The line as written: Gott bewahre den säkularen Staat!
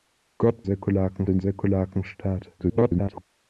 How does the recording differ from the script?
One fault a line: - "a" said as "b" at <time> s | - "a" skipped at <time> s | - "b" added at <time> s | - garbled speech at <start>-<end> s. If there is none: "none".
- "bewahre" said as "säkularen" at 0.6 s
- garbled speech at 2.6-3.2 s